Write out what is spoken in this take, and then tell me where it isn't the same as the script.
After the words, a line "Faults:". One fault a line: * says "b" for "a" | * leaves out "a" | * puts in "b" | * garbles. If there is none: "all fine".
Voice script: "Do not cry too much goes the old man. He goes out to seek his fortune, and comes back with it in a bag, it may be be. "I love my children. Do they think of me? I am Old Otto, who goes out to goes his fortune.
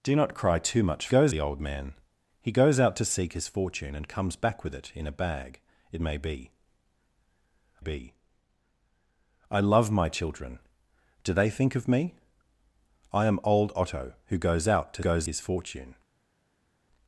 "Do not cry too much goes the old man. He goes out to seek his fortune, and comes back with it in a bag, it may be be. "I love my children. Do they think of me? I am Old Otto, who goes out to goes his fortune.
Faults:
all fine